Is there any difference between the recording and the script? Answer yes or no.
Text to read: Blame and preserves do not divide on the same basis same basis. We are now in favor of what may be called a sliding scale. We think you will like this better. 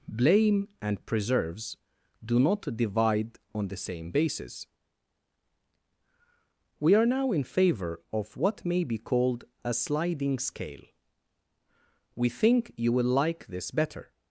yes